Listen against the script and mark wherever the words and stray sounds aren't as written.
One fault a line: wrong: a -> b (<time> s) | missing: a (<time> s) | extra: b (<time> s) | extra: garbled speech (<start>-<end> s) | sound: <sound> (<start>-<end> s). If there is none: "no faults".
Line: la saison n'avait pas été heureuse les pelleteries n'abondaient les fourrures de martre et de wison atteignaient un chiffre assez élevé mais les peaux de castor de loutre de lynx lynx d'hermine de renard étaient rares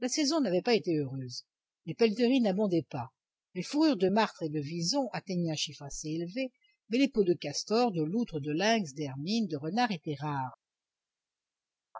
extra: pas (2.9 s)
missing: lynx (8.9 s)